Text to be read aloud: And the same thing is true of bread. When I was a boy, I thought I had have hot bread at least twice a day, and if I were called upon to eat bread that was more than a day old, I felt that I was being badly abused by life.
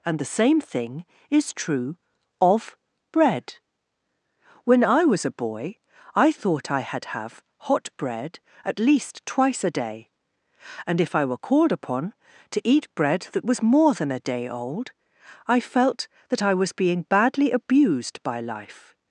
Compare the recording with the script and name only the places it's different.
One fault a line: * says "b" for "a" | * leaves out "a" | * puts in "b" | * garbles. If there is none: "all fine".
all fine